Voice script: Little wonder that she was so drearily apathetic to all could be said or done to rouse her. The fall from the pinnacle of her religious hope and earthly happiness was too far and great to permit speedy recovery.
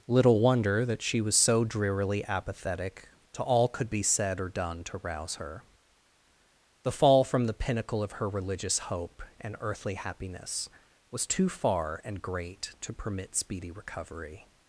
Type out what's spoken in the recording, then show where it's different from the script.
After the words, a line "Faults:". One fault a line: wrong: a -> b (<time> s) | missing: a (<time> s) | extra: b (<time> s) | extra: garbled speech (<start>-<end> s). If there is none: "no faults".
Little wonder that she was so drearily apathetic to all could be said or done to rouse her. The fall from the pinnacle of her religious hope and earthly happiness was too far and great to permit speedy recovery.
Faults:
no faults